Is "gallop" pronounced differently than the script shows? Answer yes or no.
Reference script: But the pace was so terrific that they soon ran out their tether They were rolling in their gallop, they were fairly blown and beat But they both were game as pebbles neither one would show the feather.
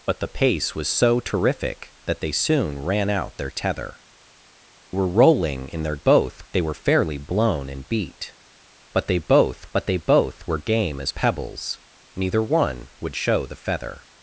yes